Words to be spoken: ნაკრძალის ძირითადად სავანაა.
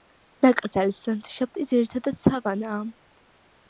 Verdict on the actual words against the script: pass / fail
fail